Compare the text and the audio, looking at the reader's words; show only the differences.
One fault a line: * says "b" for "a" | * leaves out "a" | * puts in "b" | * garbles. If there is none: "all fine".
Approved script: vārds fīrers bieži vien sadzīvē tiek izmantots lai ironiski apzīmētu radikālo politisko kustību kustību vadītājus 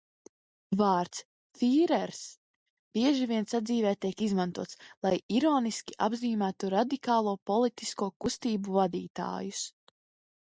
* leaves out "kustību"